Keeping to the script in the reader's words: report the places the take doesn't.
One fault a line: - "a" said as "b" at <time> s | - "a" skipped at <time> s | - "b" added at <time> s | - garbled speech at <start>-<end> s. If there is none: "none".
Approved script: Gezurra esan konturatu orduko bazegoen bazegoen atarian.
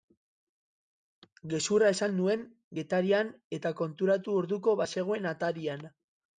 - "nuen Getarian eta" added at 2.2 s
- "bazegoen" skipped at 5.4 s